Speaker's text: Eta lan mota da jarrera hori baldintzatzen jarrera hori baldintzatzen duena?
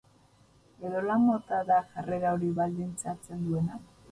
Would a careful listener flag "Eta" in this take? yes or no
yes